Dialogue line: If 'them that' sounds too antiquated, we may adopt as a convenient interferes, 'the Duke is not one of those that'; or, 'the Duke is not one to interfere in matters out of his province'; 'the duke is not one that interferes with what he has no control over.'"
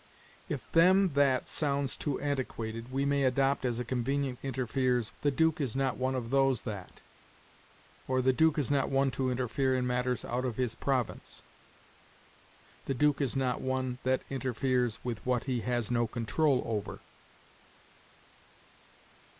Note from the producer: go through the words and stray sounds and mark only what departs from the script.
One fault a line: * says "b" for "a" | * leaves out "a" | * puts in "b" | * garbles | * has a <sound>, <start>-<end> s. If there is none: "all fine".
all fine